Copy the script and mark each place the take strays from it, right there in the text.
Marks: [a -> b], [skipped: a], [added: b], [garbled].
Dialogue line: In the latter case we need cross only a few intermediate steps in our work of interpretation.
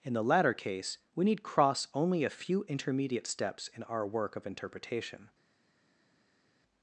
In the latter case we need cross only a few intermediate steps in our work of interpretation.